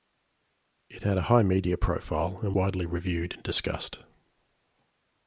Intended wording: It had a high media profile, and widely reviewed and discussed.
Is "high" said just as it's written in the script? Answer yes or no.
yes